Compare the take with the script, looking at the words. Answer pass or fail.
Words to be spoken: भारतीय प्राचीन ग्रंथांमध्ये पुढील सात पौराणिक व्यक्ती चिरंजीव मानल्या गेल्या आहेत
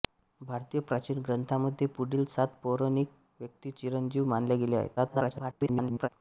fail